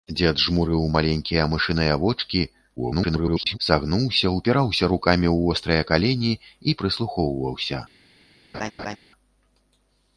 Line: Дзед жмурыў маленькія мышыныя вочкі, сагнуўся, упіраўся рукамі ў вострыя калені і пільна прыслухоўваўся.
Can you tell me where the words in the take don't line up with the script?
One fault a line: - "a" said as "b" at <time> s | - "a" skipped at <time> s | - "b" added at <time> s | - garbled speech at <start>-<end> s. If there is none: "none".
- garbled speech at 2.8-3.6 s
- "пільна" skipped at 6.8 s